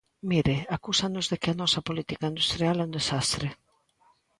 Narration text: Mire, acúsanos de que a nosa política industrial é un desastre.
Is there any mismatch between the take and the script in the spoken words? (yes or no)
no